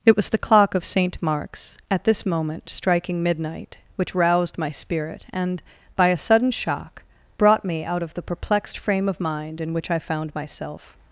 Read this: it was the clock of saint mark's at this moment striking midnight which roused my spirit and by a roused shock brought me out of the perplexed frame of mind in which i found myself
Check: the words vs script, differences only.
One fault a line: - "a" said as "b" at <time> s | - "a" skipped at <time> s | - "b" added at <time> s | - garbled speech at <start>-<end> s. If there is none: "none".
- "roused" said as "sudden" at 6.2 s